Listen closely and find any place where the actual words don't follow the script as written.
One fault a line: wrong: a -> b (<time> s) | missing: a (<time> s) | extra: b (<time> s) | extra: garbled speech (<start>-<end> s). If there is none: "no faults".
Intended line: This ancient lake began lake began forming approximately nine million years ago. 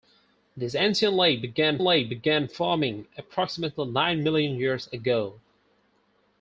no faults